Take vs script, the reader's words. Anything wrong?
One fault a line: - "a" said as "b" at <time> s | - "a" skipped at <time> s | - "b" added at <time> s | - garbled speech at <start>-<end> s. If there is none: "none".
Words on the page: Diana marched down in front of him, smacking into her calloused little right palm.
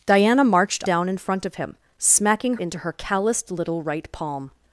none